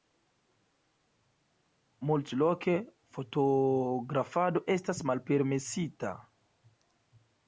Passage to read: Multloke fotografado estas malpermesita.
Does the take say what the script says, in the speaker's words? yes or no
yes